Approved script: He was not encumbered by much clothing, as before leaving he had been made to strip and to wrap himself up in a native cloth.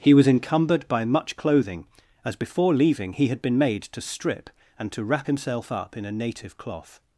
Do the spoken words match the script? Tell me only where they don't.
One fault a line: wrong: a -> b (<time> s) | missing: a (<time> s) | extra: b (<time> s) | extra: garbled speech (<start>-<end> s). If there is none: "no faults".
missing: not (0.3 s)